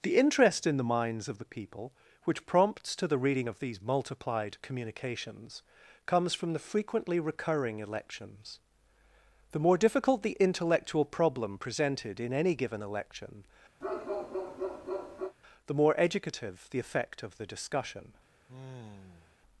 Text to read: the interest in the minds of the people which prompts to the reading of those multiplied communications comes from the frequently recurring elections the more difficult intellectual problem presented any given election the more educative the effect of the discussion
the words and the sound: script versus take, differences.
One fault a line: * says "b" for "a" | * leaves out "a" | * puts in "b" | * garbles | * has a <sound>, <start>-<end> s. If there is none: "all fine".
* says "these" for "those"
* puts in "the"
* puts in "in"
* has a bark, 13.8-15.3 s
* has a sigh, 18.5-19.4 s